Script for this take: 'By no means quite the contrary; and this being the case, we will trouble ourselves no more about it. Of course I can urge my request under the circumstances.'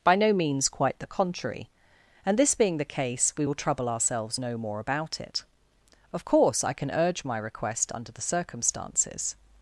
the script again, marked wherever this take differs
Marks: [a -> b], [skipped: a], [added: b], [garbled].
'By no means quite the contrary; and this being the case, we will trouble ourselves no more about it. Of course I can urge my request under the circumstances.'